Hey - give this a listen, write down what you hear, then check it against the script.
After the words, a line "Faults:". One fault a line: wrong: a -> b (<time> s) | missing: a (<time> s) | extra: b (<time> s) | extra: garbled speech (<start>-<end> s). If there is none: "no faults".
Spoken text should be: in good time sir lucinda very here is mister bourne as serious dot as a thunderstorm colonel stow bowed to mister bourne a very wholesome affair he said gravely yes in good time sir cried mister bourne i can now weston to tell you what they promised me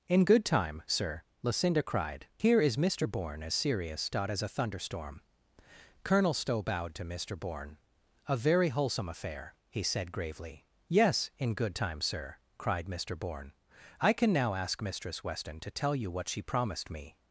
in good time sir lucinda cried here is mister bourne as serious dot as a thunderstorm colonel stow bowed to mister bourne a very wholesome affair he said gravely yes in good time sir cried mister bourne i can now ask mistress weston to tell you what she promised me
Faults:
wrong: very -> cried (1.8 s)
extra: ask mistress (14.5 s)
wrong: they -> she (16.3 s)